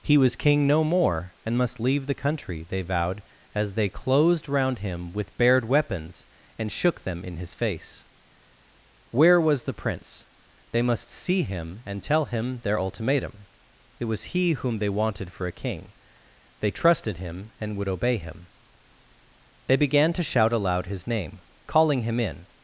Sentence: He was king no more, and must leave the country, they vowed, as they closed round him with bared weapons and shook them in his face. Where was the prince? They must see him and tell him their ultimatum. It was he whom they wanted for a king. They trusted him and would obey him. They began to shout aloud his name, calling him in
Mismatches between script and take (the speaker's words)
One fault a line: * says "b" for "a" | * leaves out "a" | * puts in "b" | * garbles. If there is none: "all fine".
all fine